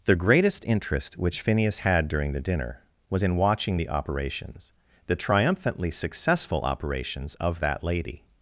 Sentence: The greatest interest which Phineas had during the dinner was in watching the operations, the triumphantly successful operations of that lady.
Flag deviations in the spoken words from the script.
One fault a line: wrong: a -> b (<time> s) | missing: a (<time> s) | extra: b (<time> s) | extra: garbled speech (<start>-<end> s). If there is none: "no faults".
no faults